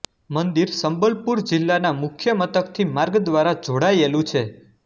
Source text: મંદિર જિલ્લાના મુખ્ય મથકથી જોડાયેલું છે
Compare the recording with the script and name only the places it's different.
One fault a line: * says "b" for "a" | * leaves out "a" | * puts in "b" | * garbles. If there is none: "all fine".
* puts in "સંબલપુર"
* puts in "માર્ગ દ્વારા"